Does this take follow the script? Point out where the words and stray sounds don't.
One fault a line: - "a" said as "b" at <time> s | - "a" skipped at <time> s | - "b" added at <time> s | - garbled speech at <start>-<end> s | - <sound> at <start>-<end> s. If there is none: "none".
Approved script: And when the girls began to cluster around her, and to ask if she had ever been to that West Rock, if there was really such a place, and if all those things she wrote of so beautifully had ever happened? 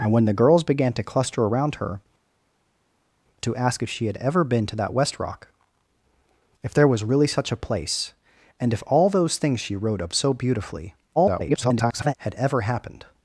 - "and" skipped at 2.0 s
- garbled speech at 11.2-12.1 s